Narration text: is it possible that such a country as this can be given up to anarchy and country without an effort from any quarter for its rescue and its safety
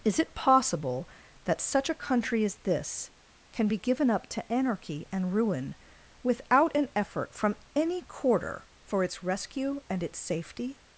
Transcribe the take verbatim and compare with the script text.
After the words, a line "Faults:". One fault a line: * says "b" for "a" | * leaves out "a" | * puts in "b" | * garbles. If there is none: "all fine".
is it possible that such a country as this can be given up to anarchy and ruin without an effort from any quarter for its rescue and its safety
Faults:
* says "ruin" for "country"